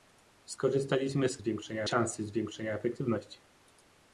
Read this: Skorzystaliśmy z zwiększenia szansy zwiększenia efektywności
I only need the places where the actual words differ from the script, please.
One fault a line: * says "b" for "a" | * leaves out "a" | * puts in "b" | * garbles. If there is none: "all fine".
all fine